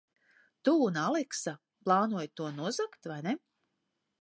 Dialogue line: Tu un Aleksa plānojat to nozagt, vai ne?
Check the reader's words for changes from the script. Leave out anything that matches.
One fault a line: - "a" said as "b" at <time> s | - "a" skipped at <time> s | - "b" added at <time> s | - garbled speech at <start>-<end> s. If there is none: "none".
none